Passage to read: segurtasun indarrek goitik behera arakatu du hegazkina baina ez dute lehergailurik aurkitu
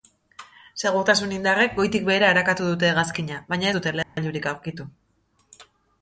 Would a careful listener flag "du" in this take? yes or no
yes